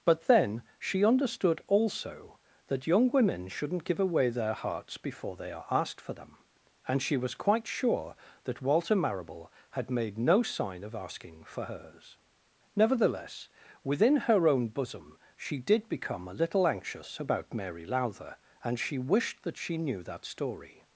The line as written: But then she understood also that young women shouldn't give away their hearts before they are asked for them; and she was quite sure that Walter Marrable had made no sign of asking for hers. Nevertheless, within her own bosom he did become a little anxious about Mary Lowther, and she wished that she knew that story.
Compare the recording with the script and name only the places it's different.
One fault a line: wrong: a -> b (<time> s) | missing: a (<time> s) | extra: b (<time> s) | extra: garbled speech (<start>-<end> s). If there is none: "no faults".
wrong: he -> she (15.3 s)